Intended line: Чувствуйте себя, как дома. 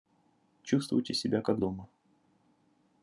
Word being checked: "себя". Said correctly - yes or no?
yes